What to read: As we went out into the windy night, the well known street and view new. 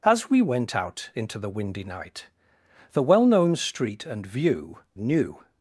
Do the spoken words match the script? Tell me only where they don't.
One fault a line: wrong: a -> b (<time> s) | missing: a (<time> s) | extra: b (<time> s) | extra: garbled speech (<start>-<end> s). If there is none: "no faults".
no faults